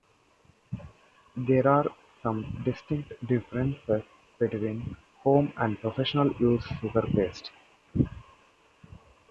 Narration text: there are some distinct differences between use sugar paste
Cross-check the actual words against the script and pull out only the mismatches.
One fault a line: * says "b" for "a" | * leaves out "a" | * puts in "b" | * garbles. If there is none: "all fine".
* puts in "home and professional"